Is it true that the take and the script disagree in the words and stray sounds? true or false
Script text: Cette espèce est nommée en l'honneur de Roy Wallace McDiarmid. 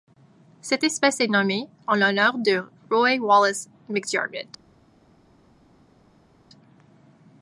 false